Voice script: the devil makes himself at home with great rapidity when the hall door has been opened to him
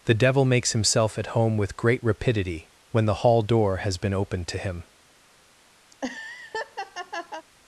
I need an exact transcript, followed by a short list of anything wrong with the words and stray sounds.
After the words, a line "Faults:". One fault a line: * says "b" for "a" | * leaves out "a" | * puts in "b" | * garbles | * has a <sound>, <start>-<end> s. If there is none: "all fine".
the devil makes himself at home with great rapidity when the hall door has been opened to him
Faults:
* has a laugh, 5.9-7.5 s